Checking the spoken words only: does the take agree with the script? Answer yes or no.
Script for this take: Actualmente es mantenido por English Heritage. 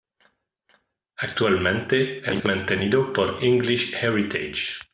yes